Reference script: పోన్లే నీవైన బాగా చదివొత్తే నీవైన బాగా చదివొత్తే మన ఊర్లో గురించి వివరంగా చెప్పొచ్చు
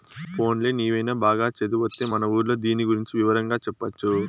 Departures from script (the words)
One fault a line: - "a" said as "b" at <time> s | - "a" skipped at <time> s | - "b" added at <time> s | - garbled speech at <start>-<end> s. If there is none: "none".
- "నీవైన బాగా చదివొత్తే" skipped at 2.0 s
- "దీని" added at 2.6 s